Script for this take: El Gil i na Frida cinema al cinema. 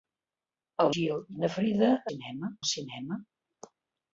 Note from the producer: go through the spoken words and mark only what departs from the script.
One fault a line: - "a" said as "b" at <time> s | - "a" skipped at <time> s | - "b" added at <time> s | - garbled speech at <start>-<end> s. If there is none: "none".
none